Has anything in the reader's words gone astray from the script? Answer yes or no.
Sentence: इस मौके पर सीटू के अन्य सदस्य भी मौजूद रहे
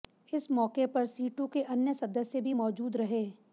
no